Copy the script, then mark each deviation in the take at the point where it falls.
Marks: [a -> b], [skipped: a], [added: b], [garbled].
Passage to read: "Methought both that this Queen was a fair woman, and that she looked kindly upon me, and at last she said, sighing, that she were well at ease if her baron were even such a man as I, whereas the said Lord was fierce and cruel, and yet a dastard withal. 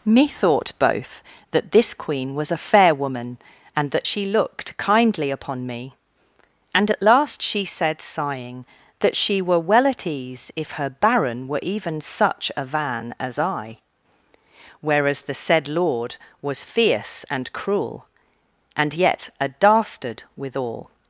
"Methought both that this Queen was a fair woman, and that she looked kindly upon me, and at last she said, sighing, that she were well at ease if her baron were even such a [man -> van] as I, whereas the said Lord was fierce and cruel, and yet a dastard withal.